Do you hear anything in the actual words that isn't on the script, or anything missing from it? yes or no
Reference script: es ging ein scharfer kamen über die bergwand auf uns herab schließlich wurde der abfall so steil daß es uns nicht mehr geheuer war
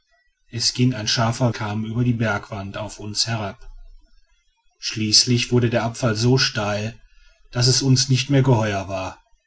no